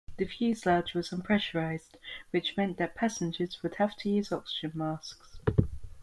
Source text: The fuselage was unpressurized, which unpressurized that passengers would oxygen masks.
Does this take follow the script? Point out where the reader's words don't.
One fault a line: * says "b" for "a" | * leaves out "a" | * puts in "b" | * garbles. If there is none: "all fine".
* says "meant" for "unpressurized"
* puts in "have to use"